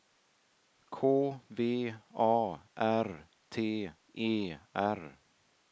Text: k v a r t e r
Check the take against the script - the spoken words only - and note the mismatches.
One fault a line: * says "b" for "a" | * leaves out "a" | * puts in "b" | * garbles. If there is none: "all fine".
all fine